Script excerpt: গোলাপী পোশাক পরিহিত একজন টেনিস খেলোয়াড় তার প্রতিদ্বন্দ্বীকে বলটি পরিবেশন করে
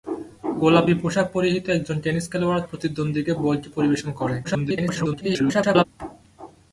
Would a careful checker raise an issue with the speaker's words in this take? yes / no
yes